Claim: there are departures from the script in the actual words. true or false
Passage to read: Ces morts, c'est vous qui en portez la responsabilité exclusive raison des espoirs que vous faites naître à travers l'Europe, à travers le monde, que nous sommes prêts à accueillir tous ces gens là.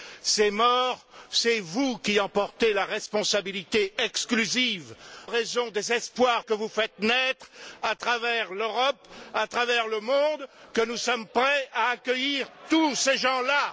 false